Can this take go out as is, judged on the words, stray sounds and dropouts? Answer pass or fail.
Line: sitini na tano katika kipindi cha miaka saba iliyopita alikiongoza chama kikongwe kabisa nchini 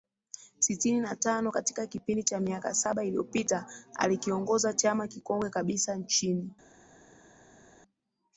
pass